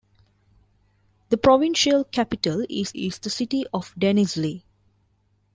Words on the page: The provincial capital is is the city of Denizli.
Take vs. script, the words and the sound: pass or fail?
pass